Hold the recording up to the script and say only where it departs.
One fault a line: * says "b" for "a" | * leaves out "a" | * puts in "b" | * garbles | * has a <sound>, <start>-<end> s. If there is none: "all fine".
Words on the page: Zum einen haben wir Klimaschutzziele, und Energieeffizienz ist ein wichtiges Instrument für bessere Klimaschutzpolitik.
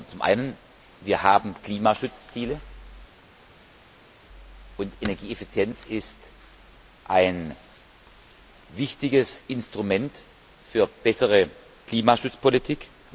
all fine